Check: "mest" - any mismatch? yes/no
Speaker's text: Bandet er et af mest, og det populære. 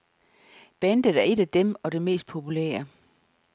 yes